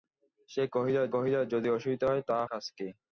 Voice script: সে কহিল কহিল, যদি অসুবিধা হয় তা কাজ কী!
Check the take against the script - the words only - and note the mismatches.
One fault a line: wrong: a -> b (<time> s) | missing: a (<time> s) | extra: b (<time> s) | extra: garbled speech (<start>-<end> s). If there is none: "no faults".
no faults